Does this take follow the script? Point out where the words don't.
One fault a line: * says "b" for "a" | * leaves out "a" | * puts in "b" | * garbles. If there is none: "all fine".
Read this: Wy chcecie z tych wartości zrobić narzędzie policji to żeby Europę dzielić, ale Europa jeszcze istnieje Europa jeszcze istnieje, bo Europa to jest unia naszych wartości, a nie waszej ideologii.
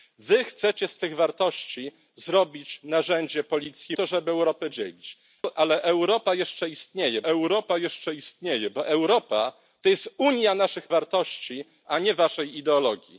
all fine